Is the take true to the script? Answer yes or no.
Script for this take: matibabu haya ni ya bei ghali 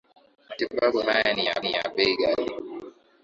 no